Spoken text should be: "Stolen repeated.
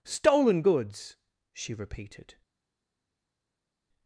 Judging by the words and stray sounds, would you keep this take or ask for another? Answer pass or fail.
fail